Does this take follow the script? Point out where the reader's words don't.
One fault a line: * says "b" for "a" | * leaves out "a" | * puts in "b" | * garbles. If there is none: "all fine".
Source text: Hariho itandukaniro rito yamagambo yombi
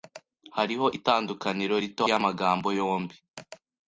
all fine